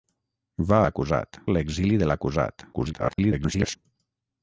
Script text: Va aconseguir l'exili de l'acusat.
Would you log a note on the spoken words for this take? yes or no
yes